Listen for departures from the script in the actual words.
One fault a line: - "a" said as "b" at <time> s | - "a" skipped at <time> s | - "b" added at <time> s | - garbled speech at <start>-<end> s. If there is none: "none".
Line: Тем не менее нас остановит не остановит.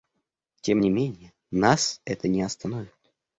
- "остановит" said as "это" at 2.1 s